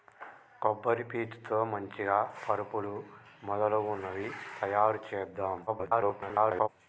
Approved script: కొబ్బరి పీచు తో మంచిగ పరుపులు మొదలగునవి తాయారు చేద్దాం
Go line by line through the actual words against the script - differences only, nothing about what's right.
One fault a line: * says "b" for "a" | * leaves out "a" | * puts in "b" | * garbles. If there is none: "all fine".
* garbles